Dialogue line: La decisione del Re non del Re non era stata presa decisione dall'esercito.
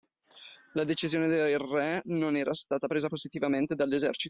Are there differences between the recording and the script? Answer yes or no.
yes